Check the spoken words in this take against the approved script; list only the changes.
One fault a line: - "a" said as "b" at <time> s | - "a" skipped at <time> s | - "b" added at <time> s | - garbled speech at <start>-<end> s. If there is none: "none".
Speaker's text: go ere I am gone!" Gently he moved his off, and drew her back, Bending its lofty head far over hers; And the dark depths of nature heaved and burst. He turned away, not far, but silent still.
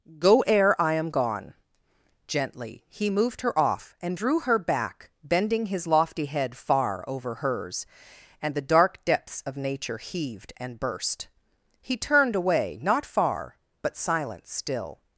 - "his" said as "her" at 3.4 s
- "its" said as "his" at 5.6 s